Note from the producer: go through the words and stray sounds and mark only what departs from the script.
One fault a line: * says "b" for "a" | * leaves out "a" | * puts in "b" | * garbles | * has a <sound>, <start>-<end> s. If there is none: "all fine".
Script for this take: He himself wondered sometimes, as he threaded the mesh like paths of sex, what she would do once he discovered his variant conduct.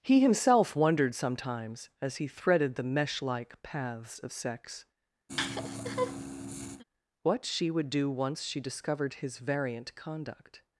* has a laugh, 5.3-6.8 s
* says "she" for "he"